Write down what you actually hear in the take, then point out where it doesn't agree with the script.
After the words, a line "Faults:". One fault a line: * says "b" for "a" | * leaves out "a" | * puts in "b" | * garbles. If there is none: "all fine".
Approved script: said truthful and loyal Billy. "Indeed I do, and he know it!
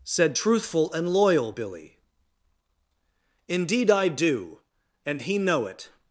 said truthful and loyal Billy. "Indeed I do, and he know it!
Faults:
all fine